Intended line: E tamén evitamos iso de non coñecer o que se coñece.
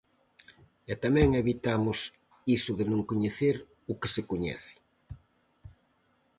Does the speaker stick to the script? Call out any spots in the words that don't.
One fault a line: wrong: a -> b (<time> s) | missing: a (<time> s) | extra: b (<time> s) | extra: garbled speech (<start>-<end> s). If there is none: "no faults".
no faults